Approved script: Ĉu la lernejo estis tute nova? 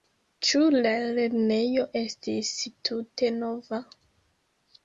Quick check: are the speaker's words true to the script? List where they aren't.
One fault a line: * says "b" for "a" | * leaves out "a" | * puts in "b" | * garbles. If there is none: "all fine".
all fine